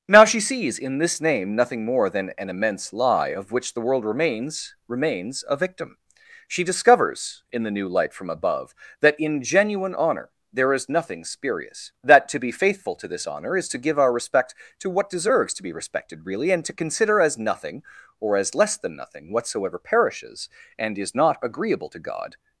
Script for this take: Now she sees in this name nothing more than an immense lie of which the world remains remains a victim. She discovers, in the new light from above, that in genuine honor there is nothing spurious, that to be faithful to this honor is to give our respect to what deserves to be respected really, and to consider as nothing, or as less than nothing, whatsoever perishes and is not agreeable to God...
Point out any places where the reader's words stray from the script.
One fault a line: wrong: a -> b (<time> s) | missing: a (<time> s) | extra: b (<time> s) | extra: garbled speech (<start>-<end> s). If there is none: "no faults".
no faults